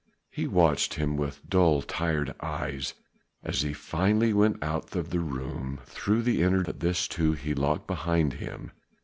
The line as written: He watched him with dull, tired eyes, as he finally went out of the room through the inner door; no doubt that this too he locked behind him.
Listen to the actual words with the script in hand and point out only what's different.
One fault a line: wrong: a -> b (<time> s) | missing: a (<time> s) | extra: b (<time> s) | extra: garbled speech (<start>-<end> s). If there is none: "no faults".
missing: door no doubt (6.6 s)